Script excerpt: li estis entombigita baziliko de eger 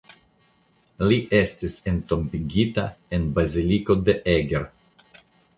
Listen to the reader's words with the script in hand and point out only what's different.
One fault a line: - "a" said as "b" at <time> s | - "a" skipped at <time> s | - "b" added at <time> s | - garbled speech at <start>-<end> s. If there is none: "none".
- "en" added at 3.2 s